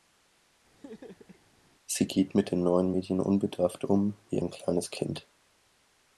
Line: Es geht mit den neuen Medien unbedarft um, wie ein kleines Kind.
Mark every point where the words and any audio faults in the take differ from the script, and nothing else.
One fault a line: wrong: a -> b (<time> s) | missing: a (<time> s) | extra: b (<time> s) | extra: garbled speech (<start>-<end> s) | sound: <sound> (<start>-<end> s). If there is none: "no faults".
sound: laugh (0.8-1.5 s)
wrong: Es -> Sie (1.9 s)